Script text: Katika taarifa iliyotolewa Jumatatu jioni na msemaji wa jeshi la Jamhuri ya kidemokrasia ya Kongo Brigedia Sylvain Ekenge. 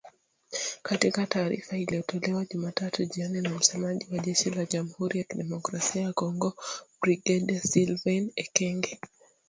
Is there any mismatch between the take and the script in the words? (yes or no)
no